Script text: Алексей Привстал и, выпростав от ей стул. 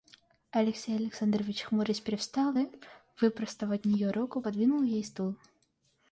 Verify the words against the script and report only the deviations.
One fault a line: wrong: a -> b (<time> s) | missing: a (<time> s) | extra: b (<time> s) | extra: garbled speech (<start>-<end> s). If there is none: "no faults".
extra: Александрович хмурясь (0.9 s)
extra: нее руку подвинул (3.9 s)